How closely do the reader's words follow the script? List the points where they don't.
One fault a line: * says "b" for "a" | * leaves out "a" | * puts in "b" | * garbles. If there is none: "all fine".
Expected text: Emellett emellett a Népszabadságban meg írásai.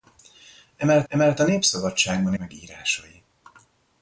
all fine